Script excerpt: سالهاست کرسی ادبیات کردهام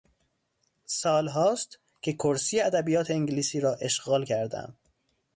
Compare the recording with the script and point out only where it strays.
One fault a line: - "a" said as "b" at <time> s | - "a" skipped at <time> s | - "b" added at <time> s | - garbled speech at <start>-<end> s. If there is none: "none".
- "که" added at 2.0 s
- "انگلیسی را اشغال" added at 3.1 s